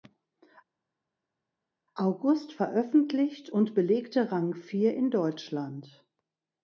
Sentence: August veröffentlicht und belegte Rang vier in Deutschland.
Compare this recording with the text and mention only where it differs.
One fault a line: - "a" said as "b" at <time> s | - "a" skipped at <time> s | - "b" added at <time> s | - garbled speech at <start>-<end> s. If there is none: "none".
none